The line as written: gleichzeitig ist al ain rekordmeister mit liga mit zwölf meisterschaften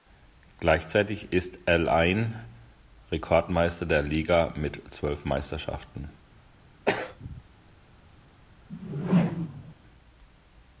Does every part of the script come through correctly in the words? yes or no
no